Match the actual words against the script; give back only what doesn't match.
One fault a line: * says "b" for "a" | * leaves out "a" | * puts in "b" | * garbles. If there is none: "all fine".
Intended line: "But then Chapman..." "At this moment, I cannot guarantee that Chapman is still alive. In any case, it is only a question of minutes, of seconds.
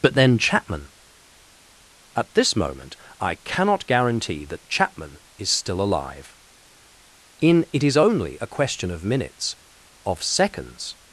* leaves out "any case"